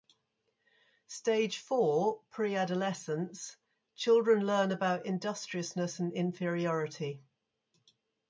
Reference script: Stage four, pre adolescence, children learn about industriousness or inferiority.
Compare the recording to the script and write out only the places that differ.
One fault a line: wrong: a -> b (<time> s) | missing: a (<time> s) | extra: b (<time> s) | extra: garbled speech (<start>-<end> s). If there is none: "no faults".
wrong: or -> and (6.0 s)